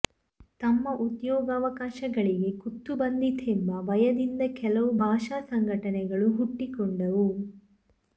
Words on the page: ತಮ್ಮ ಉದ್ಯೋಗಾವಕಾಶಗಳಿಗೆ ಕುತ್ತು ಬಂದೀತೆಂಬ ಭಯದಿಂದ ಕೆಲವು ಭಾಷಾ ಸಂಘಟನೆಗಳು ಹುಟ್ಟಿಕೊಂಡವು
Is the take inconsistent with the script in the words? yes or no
no